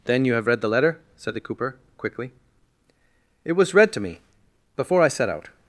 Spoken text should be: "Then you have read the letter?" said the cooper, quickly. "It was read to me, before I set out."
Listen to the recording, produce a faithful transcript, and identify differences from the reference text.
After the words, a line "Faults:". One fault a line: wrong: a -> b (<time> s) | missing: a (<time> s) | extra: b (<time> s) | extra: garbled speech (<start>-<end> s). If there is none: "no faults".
"Then you have read the letter?" said the cooper, quickly. "It was read to me, before I set out."
Faults:
no faults